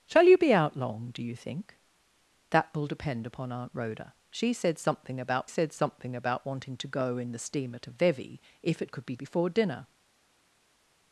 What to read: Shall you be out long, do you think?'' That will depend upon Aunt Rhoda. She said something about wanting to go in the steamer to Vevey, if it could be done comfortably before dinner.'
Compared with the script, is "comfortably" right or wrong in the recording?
wrong